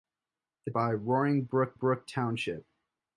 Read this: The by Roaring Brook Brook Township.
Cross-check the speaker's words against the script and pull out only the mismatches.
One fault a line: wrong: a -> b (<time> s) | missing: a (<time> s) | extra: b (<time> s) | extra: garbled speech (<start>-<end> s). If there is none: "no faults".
no faults